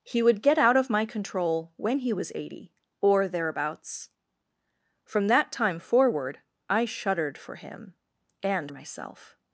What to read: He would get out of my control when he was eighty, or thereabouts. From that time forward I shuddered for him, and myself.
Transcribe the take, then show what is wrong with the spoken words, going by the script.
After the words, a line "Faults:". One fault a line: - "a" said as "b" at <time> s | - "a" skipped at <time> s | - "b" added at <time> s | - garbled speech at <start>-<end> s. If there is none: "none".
He would get out of my control when he was eighty, or thereabouts. From that time forward I shuddered for him, and myself.
Faults:
none